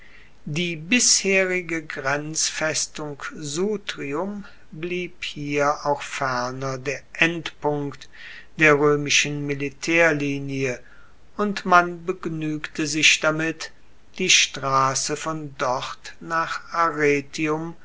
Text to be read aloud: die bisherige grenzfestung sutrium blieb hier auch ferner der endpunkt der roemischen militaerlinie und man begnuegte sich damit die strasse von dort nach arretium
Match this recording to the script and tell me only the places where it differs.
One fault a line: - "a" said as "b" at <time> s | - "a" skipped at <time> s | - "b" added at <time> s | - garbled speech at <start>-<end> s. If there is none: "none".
none